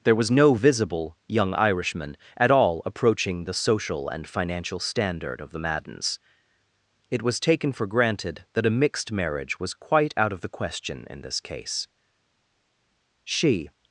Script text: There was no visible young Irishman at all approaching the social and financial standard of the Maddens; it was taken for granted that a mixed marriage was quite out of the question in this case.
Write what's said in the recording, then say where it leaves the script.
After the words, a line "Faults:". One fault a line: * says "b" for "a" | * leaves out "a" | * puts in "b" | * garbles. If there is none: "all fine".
There was no visible young Irishman at all approaching the social and financial standard of the Maddens; it was taken for granted that a mixed marriage was quite out of the question in this case. She
Faults:
* puts in "She"